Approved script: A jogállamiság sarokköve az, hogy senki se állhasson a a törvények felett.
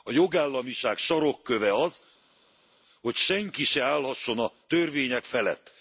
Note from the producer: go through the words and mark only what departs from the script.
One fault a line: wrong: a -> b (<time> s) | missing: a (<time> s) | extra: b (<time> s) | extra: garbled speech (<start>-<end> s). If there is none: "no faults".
missing: a (4.5 s)